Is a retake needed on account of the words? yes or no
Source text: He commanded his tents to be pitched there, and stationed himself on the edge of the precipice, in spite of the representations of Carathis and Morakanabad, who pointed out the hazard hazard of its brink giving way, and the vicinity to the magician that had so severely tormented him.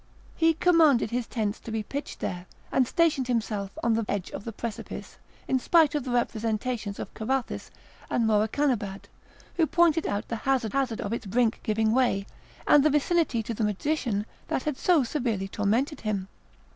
no